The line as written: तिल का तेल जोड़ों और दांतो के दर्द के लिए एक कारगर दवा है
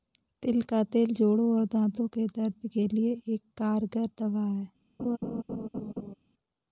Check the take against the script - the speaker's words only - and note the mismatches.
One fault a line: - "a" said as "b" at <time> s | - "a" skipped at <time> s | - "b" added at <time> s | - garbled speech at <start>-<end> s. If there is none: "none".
none